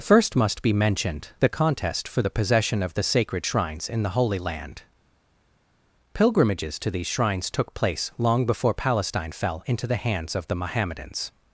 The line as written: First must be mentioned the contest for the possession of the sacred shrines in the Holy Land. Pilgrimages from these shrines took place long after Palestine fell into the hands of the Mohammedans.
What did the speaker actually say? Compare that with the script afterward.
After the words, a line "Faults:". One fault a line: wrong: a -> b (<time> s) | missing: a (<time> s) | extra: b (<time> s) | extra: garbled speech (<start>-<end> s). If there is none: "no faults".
First must be mentioned the contest for the possession of the sacred shrines in the Holy Land. Pilgrimages to these shrines took place long before Palestine fell into the hands of the Mohammedans.
Faults:
wrong: from -> to (6.8 s)
wrong: after -> before (8.5 s)